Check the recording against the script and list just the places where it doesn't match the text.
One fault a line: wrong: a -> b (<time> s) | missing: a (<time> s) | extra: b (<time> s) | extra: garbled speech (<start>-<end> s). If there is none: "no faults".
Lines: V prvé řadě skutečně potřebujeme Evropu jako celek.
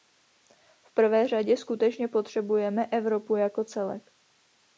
no faults